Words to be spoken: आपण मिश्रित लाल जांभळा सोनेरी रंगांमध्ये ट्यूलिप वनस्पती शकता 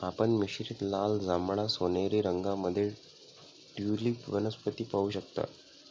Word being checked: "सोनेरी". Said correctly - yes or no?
yes